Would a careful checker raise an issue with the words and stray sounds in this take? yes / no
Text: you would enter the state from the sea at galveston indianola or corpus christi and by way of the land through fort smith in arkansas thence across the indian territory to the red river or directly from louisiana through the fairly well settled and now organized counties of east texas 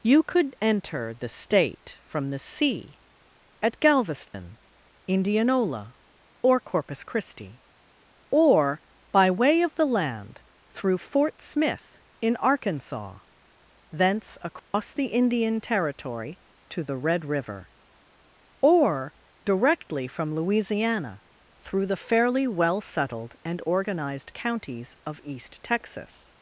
yes